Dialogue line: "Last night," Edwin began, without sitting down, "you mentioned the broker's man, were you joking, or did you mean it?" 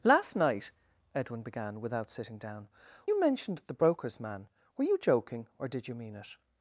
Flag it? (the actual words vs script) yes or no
no